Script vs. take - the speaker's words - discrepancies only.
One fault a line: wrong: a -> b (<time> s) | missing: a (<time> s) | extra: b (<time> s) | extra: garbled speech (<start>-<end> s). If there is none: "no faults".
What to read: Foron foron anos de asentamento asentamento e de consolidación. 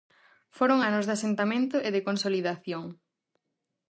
missing: foron (0.8 s)
missing: asentamento (1.8 s)